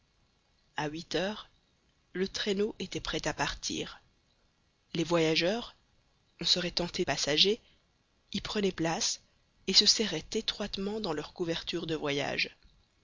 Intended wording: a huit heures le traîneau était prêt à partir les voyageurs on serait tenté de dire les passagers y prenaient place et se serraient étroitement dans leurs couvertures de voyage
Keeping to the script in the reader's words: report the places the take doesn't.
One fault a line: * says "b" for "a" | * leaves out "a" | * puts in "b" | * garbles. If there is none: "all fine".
* leaves out "de dire les"